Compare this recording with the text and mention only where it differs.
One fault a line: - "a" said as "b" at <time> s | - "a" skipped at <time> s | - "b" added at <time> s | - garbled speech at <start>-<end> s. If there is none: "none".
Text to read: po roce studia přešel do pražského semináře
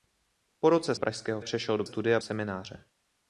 - "studia" said as "pražského" at 0.9 s
- "pražského" said as "studia" at 1.8 s